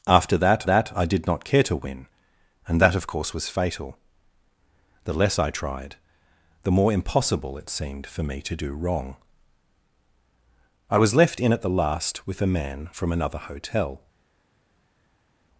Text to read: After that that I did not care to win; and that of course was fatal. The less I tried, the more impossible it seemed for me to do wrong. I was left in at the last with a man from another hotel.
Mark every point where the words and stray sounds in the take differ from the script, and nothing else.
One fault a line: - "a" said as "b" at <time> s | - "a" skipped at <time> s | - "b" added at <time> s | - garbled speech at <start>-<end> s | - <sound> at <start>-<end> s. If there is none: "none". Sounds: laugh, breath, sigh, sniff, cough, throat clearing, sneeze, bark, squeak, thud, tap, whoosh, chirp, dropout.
none